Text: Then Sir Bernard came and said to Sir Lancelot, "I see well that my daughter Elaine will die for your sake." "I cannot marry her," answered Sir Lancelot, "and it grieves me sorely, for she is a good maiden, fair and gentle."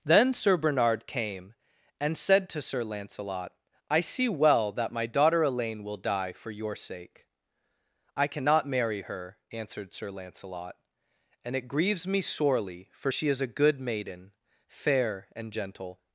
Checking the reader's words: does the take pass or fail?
pass